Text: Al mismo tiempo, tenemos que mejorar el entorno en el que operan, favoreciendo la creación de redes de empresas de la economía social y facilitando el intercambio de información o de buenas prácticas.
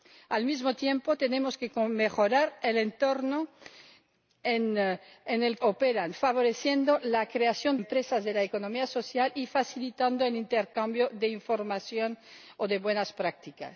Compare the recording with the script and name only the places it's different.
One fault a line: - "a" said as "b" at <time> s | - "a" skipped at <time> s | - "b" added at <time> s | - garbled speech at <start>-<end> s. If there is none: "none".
- "que" skipped at 5.6 s
- "de redes de" skipped at 7.8 s